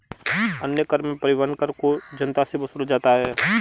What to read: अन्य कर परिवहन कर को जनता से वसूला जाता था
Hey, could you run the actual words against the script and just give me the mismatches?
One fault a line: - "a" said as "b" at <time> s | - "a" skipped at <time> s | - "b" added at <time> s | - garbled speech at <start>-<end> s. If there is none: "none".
- "में" added at 1.0 s
- "था" said as "है" at 3.1 s